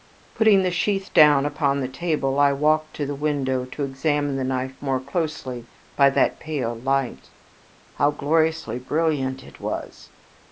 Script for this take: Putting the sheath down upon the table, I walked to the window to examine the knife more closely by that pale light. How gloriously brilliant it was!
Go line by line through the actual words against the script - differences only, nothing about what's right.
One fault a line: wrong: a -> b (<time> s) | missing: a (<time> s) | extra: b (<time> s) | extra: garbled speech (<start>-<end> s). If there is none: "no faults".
no faults